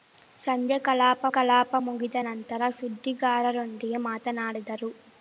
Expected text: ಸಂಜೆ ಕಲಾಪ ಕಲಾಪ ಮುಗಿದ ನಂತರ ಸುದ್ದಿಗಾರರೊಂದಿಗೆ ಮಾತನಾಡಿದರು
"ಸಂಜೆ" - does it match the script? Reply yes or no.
yes